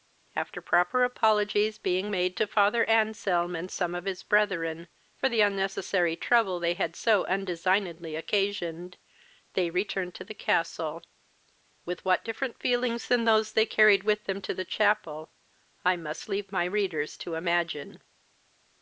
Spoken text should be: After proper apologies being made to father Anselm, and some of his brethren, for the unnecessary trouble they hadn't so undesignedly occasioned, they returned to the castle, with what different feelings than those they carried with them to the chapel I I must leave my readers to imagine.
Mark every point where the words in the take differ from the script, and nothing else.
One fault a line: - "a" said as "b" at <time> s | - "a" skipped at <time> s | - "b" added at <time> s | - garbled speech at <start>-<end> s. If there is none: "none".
- "hadn't" said as "had" at 6.7 s
- "I" skipped at 15.9 s